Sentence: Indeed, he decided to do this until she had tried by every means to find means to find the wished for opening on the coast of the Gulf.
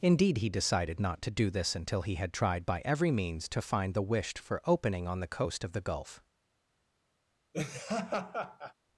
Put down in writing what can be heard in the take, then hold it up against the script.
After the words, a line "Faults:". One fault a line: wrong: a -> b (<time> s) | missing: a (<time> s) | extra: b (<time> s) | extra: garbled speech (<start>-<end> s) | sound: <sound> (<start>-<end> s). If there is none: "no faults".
Indeed, he decided not to do this until he had tried by every means to find the wished for opening on the coast of the Gulf.
Faults:
extra: not (1.0 s)
wrong: she -> he (2.0 s)
missing: means to find (3.9 s)
sound: laugh (7.5-8.7 s)